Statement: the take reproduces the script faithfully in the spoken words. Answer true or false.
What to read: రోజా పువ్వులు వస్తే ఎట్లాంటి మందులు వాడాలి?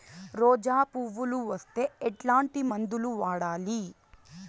true